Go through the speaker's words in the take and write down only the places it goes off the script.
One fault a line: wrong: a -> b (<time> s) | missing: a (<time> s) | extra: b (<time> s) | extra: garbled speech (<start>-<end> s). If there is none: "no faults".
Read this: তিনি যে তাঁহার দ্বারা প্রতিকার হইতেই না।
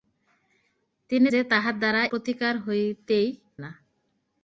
no faults